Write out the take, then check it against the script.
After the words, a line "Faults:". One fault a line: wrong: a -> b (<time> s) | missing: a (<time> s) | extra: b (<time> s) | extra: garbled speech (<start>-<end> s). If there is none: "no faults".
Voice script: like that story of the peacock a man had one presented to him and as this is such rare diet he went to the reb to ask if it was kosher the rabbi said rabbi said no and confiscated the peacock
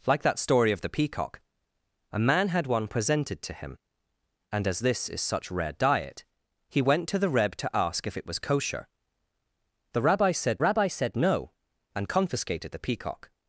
like that story of the peacock a man had one presented to him and as this is such rare diet he went to the reb to ask if it was kosher the rabbi said rabbi said no and confiscated the peacock
Faults:
no faults